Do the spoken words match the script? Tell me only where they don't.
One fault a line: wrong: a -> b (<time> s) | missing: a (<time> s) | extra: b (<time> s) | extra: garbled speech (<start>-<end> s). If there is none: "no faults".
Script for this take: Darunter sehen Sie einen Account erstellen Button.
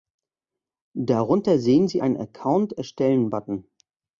no faults